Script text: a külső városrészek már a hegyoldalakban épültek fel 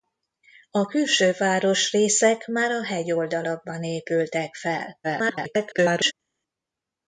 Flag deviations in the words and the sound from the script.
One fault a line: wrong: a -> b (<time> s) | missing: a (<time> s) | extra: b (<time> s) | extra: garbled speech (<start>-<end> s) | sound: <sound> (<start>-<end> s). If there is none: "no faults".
extra: garbled speech (5.0-6.1 s)